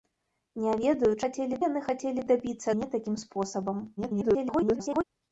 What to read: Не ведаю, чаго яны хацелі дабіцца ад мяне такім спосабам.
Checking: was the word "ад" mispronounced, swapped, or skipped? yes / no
yes